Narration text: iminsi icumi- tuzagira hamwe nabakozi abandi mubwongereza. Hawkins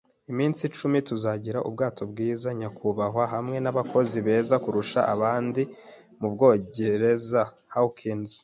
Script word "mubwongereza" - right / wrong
right